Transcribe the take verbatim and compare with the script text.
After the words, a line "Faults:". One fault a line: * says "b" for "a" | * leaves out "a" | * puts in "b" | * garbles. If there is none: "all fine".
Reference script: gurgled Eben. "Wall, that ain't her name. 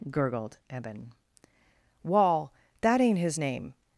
gurgled Eben. "Wall, that ain't his name.
Faults:
* says "his" for "her"